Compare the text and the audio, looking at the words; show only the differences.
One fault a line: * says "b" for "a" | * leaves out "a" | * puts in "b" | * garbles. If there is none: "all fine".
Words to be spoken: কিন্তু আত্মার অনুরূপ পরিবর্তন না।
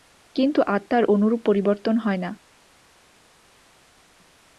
* puts in "হয়"